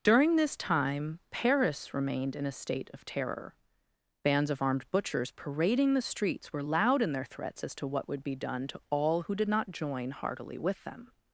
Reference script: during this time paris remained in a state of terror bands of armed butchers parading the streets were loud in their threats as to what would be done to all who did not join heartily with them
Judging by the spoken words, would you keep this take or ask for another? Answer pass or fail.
pass